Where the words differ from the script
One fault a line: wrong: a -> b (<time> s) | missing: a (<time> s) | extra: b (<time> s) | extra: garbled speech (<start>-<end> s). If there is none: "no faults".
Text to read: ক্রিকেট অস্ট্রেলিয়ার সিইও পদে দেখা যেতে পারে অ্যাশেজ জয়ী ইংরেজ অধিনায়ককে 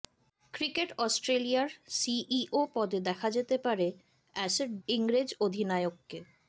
missing: জয়ী (4.7 s)